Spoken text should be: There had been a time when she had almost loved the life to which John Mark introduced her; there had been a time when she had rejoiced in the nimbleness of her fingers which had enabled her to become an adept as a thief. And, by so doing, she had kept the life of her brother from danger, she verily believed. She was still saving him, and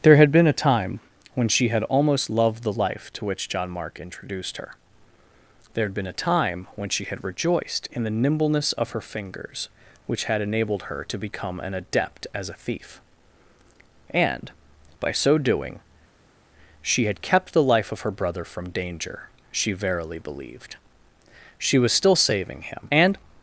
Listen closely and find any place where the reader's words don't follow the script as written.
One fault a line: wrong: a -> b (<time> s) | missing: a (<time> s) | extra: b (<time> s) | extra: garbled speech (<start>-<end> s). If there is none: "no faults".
no faults